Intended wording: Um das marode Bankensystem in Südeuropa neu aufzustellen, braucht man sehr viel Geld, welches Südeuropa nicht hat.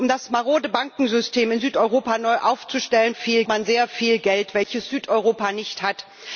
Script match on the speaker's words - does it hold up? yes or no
no